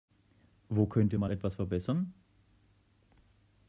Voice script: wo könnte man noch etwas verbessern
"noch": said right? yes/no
no